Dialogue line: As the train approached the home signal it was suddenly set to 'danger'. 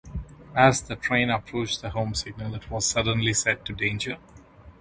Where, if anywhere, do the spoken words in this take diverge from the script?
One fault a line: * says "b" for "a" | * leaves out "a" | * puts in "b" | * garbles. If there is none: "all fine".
all fine